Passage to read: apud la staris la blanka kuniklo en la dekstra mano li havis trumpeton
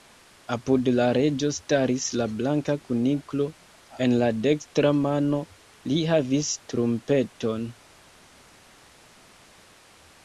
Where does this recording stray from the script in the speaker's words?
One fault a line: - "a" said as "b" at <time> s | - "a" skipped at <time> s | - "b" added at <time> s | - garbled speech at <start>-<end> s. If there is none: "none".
- "reĝo" added at 1.2 s